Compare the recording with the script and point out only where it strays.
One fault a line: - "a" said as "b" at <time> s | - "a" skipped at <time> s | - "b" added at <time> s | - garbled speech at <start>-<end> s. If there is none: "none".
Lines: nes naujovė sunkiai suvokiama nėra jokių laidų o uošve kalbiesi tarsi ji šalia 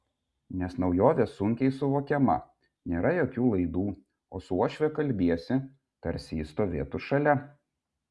- "su" added at 4.5 s
- "stovėtų" added at 6.5 s